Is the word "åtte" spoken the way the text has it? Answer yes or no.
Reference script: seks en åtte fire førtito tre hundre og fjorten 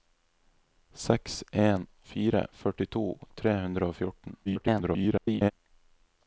no